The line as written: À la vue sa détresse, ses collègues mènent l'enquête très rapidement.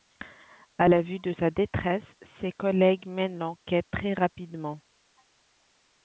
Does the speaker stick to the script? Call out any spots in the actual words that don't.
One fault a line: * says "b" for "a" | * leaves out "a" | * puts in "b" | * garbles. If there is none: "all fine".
* puts in "de"